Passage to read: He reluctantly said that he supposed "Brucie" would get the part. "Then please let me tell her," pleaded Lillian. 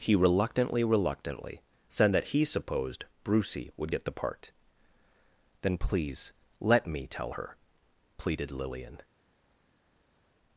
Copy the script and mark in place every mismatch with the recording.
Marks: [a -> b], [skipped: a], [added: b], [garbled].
He reluctantly [added: reluctantly] said that he supposed "Brucie" would get the part. "Then please let me tell her," pleaded Lillian.